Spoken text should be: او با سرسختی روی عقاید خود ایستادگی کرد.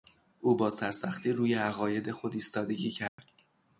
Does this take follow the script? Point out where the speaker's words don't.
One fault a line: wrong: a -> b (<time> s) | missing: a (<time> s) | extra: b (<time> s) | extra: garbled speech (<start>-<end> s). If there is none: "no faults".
no faults